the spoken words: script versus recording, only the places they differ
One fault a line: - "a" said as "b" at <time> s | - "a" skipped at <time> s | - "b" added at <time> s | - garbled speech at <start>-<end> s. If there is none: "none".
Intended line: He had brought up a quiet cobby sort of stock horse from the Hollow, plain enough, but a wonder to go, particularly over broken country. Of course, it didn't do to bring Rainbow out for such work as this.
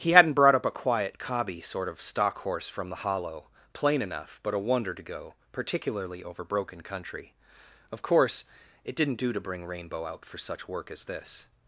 - "had" said as "hadn't" at 0.1 s